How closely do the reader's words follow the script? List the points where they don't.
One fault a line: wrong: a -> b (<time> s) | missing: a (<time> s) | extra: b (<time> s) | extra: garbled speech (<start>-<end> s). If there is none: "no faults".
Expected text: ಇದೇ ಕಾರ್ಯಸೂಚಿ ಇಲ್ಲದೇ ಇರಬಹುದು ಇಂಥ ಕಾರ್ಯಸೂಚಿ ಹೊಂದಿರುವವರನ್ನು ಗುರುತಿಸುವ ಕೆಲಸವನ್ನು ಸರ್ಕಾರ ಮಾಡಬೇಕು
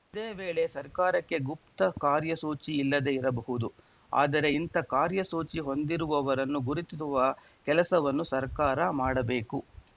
extra: ವೇಳೆ ಸರ್ಕಾರಕ್ಕೆ ಗುಪ್ತ (0.3 s)
extra: ಆದರೆ (4.1 s)